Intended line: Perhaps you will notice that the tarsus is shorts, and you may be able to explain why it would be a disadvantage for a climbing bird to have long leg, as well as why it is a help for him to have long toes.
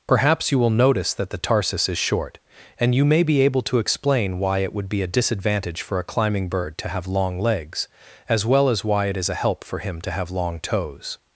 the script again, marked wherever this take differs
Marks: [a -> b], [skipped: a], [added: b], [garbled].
Perhaps you will notice that the tarsus is [shorts, -> short] and you may be able to explain why it would be a disadvantage for a climbing bird to have long [leg, -> legs] as well as why it is a help for him to have long toes.